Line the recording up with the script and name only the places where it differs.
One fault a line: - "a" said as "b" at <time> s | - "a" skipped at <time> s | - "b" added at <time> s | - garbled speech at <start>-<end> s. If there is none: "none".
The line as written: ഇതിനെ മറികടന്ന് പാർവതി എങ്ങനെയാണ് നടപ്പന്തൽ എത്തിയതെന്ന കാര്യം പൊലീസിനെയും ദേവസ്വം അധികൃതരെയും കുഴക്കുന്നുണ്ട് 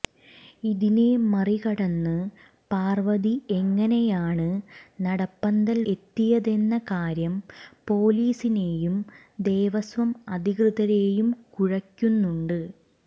none